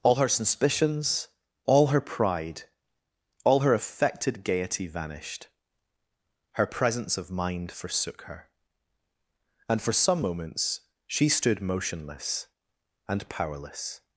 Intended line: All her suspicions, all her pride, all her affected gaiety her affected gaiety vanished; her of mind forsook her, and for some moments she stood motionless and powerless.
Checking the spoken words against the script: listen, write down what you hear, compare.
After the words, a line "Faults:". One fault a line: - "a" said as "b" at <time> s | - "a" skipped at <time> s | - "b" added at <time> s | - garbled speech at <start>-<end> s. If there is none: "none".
All her suspicions, all her pride, all her affected gaiety vanished; her presence of mind forsook her, and for some moments she stood motionless and powerless.
Faults:
- "her affected gaiety" skipped at 4.9 s
- "presence" added at 6.7 s